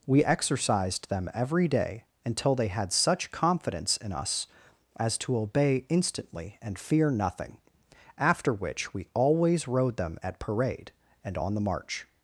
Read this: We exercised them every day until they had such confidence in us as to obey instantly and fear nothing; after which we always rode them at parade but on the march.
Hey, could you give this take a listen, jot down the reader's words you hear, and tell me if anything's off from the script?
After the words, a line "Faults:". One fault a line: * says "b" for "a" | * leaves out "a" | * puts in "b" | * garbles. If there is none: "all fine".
We exercised them every day until they had such confidence in us as to obey instantly and fear nothing; after which we always rode them at parade and on the march.
Faults:
* says "and" for "but"